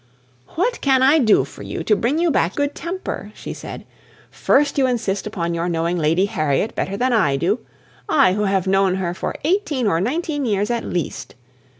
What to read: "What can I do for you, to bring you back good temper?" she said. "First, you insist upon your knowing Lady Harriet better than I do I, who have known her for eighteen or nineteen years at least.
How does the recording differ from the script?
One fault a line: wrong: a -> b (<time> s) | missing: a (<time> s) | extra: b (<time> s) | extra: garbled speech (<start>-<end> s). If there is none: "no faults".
no faults